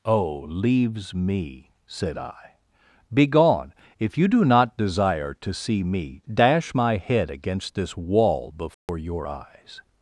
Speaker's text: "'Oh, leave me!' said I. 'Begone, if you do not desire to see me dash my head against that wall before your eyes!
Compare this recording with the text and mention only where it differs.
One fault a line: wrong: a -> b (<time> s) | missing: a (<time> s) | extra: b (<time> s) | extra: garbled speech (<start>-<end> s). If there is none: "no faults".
wrong: leave -> leaves (0.5 s)
wrong: that -> this (7.8 s)